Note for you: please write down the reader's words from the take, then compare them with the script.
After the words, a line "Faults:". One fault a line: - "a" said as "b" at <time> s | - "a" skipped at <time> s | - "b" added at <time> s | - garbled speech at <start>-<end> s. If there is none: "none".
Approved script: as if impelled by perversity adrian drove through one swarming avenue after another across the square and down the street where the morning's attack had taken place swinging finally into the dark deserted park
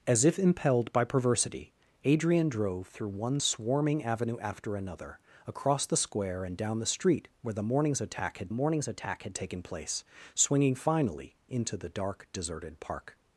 as if impelled by perversity adrian drove through one swarming avenue after another across the square and down the street where the morning's attack had morning's attack had taken place swinging finally into the dark deserted park
Faults:
- "morning's attack had" added at 8.5 s